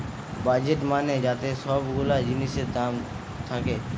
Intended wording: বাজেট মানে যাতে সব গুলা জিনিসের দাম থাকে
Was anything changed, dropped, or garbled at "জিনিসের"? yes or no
no